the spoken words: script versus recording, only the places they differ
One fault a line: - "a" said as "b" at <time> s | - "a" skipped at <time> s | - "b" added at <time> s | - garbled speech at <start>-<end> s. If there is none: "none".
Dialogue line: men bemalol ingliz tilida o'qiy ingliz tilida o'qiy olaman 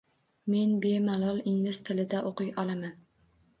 - "ingliz tilida o'qiy" skipped at 2.6 s